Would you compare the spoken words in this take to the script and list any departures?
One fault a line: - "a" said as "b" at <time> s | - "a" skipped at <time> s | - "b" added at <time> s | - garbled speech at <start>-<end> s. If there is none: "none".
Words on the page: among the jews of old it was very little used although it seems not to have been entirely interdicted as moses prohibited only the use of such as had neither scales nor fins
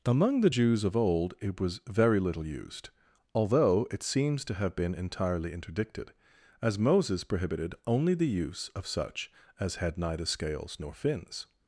- "not" skipped at 4.4 s